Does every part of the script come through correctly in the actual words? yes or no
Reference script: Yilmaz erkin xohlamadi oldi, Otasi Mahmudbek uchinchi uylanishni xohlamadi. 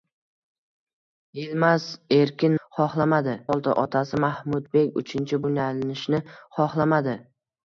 yes